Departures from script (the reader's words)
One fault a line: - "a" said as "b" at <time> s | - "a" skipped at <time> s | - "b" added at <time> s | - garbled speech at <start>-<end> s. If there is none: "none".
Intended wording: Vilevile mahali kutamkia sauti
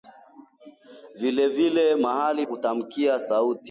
none